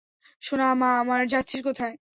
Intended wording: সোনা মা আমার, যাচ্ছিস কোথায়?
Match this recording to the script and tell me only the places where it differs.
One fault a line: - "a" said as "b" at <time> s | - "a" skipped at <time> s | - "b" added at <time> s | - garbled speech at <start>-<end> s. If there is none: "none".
none